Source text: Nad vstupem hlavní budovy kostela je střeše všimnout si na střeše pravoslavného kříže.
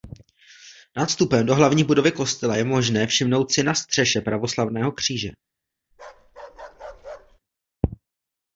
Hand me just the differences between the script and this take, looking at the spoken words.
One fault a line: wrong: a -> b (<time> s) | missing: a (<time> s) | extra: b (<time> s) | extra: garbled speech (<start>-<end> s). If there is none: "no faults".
extra: do (1.4 s)
wrong: střeše -> možné (2.6 s)